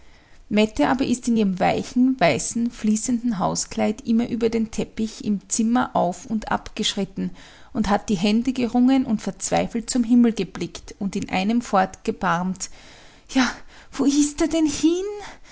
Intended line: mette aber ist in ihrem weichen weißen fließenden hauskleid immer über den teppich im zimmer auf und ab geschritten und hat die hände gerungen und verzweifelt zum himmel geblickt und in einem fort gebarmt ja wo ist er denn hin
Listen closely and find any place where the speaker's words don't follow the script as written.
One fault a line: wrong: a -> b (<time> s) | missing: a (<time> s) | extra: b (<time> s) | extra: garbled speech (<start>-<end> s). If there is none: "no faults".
no faults